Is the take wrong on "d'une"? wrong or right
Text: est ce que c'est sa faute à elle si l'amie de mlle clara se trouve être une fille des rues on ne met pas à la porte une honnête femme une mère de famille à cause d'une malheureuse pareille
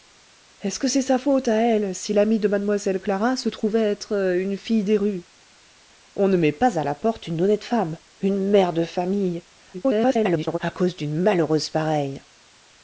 right